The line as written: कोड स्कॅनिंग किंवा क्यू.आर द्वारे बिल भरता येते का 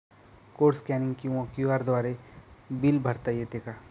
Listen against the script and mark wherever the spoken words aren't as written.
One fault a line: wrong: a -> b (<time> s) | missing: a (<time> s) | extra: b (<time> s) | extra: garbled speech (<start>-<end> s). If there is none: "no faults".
no faults